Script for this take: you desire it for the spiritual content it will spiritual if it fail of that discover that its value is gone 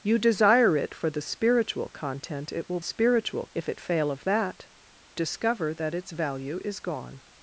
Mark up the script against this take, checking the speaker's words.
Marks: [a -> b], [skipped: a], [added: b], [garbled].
you desire it for the spiritual content it will spiritual if it fail of that discover that its value is gone